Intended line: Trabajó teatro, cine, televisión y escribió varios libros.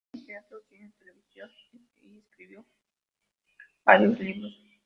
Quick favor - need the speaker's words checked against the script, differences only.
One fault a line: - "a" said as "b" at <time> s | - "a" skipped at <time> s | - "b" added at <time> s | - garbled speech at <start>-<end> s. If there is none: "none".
- "en" added at 0.1 s